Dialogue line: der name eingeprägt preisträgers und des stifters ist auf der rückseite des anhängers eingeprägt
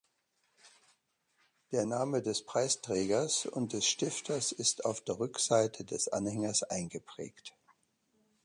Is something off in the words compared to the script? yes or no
yes